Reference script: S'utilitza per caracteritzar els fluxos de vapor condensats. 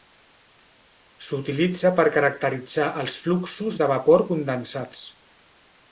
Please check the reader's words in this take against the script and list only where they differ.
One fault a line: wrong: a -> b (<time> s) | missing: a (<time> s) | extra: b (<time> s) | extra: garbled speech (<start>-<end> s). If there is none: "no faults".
no faults